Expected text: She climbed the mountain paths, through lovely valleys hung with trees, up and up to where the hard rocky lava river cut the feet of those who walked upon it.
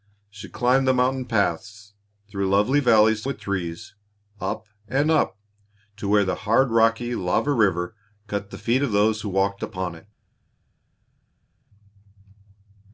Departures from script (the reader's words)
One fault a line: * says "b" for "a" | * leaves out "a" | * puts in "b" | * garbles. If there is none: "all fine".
* leaves out "hung"